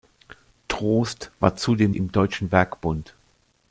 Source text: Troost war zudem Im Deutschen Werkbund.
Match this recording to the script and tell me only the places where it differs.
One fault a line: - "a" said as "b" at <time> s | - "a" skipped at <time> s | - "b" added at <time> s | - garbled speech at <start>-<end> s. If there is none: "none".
none